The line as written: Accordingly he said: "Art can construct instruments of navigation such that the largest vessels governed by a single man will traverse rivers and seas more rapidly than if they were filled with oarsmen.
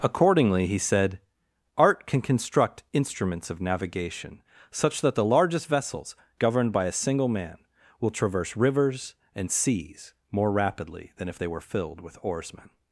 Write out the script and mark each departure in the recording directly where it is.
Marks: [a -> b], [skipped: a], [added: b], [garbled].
Accordingly he said: "Art can construct instruments of navigation such that the largest vessels governed by a single man will traverse rivers and seas more rapidly than if they were filled with oarsmen.